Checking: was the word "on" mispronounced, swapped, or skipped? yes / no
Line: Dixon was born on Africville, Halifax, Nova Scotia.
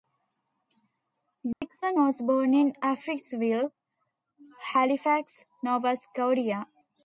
yes